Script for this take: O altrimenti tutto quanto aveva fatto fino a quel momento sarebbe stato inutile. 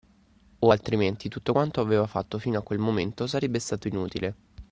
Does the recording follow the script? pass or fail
pass